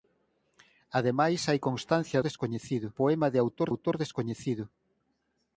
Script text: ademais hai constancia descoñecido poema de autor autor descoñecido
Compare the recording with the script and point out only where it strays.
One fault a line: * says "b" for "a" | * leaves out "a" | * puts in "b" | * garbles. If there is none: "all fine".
all fine